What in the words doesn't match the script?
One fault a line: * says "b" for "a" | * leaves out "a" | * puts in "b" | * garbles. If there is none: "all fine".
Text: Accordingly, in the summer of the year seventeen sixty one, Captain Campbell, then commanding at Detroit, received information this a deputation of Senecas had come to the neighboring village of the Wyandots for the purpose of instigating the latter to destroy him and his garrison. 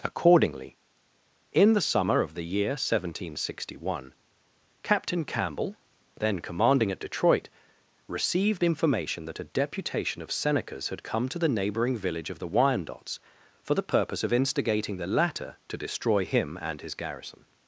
* says "that" for "this"